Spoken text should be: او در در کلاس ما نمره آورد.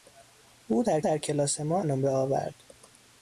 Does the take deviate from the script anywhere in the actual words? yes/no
no